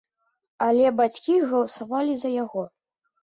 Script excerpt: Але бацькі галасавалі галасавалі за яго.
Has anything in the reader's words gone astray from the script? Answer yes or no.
yes